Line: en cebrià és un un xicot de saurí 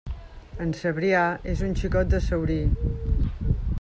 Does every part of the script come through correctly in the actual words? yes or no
no